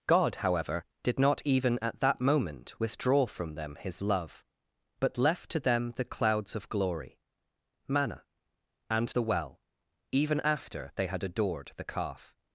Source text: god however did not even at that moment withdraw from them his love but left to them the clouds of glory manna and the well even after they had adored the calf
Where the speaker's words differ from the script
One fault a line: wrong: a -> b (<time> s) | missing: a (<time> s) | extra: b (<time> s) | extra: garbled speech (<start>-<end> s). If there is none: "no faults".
no faults